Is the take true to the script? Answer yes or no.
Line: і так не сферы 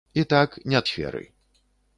yes